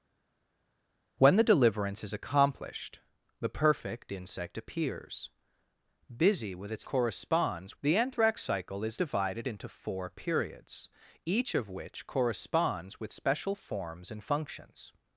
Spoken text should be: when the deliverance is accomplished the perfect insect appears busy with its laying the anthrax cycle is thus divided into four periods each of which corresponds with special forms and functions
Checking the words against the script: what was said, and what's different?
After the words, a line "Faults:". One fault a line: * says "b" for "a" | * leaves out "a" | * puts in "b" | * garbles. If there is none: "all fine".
when the deliverance is accomplished the perfect insect appears busy with its corresponds the anthrax cycle is divided into four periods each of which corresponds with special forms and functions
Faults:
* says "corresponds" for "laying"
* leaves out "thus"